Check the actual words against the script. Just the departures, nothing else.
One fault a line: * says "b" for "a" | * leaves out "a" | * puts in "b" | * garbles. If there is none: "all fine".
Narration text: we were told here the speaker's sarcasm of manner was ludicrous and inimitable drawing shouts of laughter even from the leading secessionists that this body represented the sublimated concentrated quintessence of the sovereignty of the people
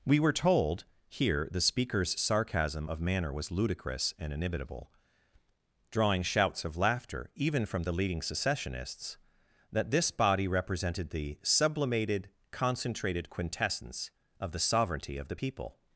all fine